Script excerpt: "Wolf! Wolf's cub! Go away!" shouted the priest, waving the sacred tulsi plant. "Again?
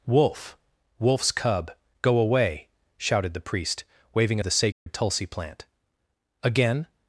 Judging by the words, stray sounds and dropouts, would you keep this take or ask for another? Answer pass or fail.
fail